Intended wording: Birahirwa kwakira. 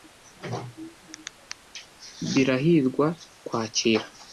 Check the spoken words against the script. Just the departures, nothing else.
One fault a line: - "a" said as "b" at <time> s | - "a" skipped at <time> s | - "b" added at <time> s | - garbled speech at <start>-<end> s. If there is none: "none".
none